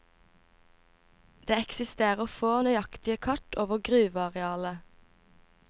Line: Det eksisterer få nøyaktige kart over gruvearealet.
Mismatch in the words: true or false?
false